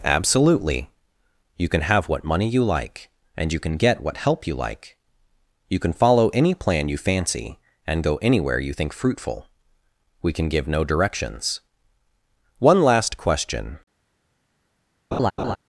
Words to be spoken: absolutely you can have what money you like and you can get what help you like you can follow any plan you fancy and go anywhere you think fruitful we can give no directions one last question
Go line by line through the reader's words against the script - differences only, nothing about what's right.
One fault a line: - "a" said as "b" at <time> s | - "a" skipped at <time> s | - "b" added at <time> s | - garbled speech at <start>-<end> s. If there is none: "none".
none